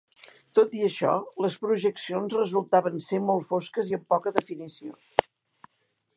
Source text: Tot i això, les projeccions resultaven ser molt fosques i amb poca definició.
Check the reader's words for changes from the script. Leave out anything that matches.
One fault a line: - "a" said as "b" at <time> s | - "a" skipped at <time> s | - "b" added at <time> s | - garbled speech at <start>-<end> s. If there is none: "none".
none